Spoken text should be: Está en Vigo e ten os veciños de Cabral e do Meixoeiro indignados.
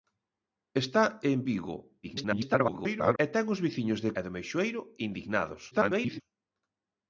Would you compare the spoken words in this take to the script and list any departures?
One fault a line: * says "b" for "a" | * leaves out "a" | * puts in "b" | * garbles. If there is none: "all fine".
* garbles
* leaves out "Cabral"
* garbles